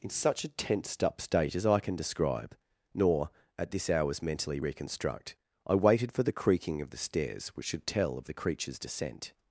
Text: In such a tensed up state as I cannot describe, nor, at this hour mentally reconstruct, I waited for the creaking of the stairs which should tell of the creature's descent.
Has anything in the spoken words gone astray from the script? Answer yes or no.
yes